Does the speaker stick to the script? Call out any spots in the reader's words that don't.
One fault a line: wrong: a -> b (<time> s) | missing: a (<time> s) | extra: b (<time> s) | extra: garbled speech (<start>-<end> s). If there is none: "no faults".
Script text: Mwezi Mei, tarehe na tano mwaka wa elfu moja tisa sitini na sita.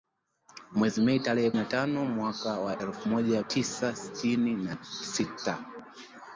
no faults